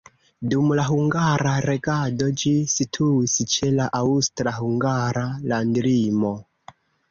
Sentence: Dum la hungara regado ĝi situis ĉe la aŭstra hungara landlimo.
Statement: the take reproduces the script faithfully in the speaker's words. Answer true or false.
true